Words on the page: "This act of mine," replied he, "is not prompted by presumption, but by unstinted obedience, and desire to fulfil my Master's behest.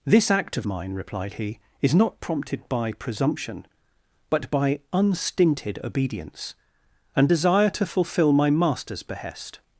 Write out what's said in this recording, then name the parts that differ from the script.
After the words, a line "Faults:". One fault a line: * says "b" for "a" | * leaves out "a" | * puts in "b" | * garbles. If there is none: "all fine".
"This act of mine," replied he, "is not prompted by presumption, but by unstinted obedience, and desire to fulfil my Master's behest.
Faults:
all fine